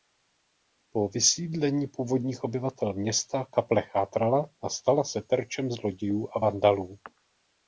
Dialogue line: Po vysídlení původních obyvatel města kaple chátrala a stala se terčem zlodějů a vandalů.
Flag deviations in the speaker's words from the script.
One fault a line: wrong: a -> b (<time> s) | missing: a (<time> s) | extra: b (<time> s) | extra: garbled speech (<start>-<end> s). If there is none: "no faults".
no faults